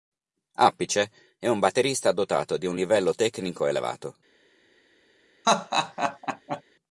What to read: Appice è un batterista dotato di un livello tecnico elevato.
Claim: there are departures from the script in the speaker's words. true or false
false